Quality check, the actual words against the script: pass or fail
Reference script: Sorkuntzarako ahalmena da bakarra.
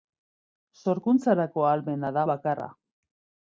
pass